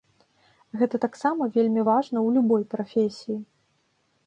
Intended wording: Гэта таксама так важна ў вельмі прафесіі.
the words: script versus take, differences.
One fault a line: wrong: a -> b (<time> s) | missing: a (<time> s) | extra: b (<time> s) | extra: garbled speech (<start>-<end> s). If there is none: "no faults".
wrong: так -> вельмі (1.6 s)
wrong: вельмі -> любой (2.4 s)